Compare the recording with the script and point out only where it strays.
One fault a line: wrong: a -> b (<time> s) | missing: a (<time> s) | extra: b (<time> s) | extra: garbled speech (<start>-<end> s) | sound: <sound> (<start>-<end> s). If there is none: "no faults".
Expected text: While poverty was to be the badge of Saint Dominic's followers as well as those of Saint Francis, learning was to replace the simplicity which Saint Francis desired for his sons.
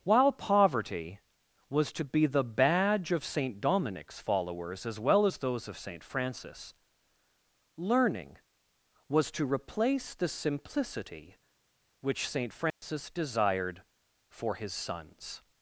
sound: dropout (12.7-12.8 s)